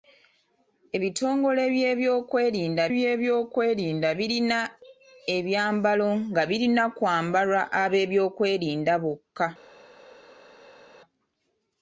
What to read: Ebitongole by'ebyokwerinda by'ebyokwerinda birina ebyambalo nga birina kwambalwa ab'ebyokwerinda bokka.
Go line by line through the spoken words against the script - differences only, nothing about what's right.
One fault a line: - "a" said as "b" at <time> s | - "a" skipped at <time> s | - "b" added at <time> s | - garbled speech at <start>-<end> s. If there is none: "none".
none